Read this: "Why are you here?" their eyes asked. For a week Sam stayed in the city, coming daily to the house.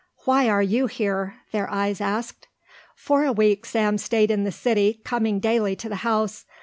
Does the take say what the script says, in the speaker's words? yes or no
yes